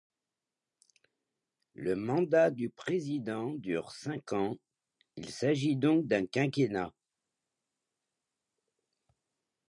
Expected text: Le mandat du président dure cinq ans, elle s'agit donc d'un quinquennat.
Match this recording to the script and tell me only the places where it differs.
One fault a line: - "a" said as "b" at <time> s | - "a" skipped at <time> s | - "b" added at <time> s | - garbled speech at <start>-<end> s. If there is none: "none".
- "elle" said as "il" at 5.2 s